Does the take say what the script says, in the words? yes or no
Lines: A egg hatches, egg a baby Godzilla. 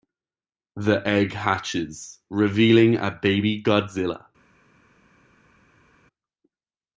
no